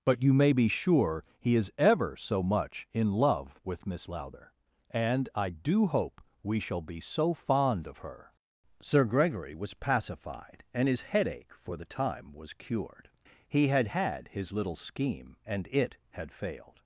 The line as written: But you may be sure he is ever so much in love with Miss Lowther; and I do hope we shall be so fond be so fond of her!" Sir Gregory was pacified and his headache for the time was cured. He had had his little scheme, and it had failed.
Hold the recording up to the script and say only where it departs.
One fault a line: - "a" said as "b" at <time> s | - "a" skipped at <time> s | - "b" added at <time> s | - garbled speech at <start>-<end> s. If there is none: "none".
- "be so fond" skipped at 7.8 s